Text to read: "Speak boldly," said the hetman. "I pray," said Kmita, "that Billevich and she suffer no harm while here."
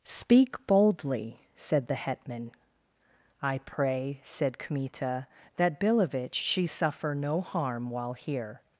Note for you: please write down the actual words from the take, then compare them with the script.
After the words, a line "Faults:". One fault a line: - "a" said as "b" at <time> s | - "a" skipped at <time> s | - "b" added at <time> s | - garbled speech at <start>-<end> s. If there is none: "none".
"Speak boldly," said the hetman. "I pray," said Kmita, "that Billevich she suffer no harm while here."
Faults:
- "and" skipped at 6.4 s